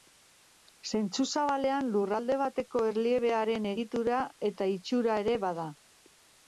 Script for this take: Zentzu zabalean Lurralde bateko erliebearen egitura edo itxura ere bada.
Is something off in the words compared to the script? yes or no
yes